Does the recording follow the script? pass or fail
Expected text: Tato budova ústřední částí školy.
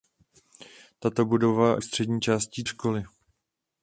pass